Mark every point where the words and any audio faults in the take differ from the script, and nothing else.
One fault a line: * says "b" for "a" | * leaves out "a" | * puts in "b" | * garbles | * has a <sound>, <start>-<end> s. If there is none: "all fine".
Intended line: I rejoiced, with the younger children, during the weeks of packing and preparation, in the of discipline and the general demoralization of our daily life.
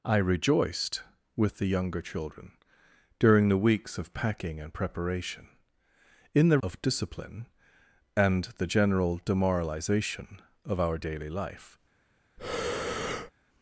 * has a breath, 12.4-13.3 s